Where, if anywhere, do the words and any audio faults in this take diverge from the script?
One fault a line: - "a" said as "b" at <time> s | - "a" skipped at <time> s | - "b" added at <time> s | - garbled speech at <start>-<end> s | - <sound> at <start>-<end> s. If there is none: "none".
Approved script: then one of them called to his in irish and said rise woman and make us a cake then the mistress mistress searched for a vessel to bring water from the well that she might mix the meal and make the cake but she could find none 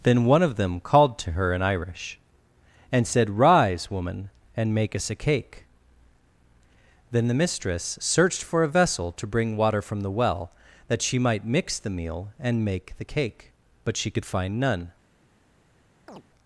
- "his" said as "her" at 1.3 s
- "mistress" skipped at 8.0 s
- chirp at 16.1-16.2 s